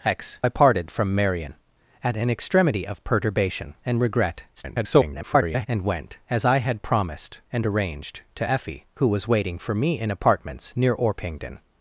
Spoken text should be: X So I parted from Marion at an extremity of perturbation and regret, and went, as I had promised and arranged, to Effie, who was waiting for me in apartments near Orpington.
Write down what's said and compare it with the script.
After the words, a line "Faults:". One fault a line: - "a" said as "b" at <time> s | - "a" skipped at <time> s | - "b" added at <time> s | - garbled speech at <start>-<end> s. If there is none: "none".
X I parted from Marion at an extremity of perturbation and regret, [garbled] and went, as I had promised and arranged, to Effie, who was waiting for me in apartments near Orpington.
Faults:
- "So" skipped at 0.4 s
- garbled speech at 4.5-5.7 s